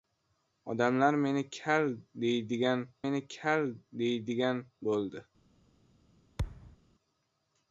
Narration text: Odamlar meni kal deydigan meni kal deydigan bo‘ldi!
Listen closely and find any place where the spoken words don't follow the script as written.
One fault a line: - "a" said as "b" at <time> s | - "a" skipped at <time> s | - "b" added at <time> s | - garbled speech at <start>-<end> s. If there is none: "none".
none